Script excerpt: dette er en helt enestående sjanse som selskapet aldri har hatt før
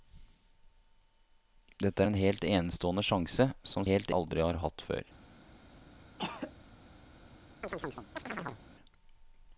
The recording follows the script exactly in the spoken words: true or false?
false